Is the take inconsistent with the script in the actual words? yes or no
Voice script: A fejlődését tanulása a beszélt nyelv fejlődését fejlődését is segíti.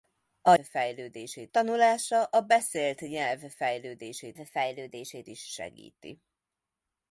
no